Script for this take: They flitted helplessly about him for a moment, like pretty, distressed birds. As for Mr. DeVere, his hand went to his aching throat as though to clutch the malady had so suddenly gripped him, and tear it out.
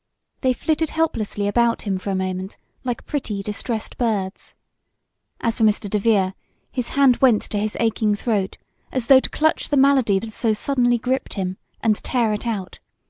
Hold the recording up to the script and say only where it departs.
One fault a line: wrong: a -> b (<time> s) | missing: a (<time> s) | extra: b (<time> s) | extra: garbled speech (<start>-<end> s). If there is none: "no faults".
no faults